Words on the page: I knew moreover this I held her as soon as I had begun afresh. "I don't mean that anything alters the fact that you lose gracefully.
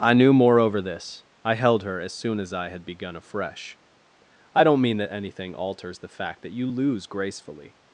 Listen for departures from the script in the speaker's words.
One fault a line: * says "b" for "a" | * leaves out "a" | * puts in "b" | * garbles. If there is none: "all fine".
all fine